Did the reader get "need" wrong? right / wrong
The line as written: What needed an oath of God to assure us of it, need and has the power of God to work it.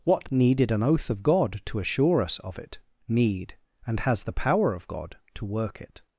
right